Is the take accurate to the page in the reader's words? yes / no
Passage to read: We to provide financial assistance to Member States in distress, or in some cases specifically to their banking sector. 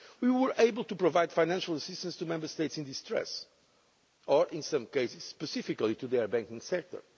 no